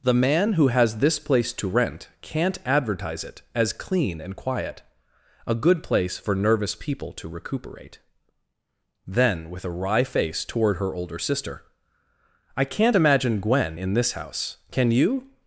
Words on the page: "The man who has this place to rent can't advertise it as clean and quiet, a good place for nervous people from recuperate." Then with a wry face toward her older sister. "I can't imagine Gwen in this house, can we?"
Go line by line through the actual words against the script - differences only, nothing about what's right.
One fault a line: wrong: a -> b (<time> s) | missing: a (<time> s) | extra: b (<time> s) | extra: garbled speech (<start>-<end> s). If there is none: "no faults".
wrong: from -> to (7.1 s)
wrong: we -> you (14.9 s)